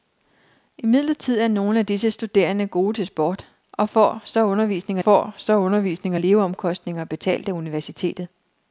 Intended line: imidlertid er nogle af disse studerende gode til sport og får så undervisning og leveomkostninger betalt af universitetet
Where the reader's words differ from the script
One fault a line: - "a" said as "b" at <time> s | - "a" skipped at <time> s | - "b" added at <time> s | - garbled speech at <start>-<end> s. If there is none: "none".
- "får så undervisning" added at 5.0 s